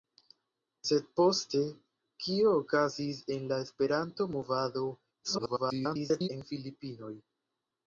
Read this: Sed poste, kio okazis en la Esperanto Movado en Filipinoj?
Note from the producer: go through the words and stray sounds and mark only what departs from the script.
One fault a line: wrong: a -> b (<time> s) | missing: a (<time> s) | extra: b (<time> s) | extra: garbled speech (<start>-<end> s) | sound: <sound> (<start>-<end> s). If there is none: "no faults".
extra: garbled speech (5.2-6.3 s)